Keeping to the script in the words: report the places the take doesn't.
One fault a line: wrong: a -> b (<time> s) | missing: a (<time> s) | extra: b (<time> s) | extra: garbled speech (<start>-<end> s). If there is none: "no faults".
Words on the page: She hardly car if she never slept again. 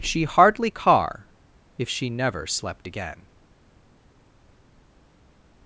no faults